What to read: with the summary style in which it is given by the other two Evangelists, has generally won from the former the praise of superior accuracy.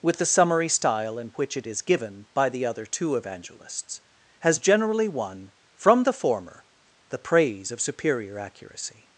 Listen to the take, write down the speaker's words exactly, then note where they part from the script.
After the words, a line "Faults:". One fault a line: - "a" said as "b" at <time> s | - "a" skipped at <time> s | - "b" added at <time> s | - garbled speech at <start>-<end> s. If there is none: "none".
with the summary style in which it is given by the other two Evangelists, has generally won from the former the praise of superior accuracy.
Faults:
none